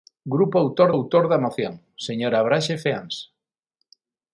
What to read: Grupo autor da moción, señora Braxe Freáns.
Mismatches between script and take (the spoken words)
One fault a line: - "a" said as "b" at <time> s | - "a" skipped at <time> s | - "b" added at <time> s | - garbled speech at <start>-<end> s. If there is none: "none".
- "autor" added at 1.0 s